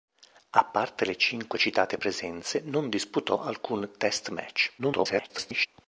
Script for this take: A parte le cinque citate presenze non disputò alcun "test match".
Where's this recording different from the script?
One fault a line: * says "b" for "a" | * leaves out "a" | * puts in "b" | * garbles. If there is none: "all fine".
* garbles